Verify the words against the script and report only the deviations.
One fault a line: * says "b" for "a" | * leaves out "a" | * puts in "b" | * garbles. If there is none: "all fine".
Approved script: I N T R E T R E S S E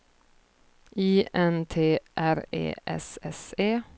* leaves out "T R E"